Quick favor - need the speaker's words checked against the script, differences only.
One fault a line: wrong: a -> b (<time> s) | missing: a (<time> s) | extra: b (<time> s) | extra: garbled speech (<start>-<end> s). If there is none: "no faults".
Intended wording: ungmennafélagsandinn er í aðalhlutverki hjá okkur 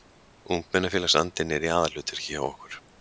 no faults